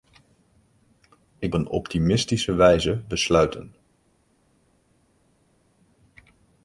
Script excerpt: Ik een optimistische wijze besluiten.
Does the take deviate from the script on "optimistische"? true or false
false